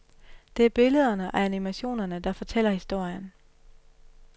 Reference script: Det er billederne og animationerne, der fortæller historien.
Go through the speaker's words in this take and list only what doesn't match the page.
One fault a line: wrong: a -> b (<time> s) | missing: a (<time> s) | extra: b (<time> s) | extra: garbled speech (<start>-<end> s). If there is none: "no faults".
no faults